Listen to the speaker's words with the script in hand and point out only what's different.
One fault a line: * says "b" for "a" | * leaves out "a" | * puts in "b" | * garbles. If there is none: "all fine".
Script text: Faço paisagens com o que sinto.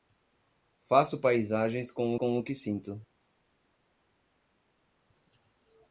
* puts in "com"